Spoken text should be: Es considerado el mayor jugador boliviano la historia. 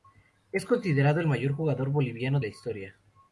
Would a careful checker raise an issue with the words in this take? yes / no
no